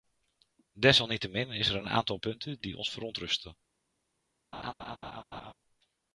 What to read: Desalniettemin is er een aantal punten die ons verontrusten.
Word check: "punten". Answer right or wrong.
right